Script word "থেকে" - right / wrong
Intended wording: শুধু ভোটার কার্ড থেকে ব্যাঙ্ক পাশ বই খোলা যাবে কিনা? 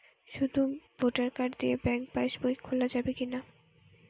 wrong